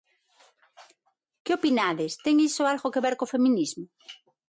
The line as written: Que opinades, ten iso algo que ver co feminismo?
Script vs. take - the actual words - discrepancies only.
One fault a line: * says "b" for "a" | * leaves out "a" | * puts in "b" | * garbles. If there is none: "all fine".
all fine